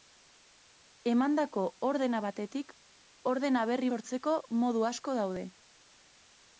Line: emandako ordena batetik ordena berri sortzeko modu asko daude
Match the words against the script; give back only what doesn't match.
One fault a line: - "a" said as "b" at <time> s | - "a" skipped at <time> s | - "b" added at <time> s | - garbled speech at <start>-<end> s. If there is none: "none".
none